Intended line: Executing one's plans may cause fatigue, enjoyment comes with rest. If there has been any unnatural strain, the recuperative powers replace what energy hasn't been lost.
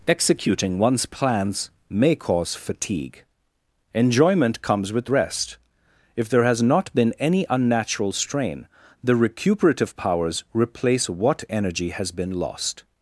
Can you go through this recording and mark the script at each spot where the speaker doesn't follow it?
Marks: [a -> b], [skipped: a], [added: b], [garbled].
Executing one's plans may cause fatigue, enjoyment comes with rest. If there has [added: not] been any unnatural strain, the recuperative powers replace what energy [hasn't -> has] been lost.